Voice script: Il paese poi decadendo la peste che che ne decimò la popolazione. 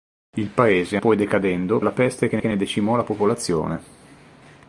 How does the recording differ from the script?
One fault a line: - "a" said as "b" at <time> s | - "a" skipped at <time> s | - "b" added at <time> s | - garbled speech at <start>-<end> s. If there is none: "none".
none